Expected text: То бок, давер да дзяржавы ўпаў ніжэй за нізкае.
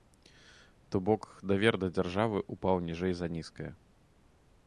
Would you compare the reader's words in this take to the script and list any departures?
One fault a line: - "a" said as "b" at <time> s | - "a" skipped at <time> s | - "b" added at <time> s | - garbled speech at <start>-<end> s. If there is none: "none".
none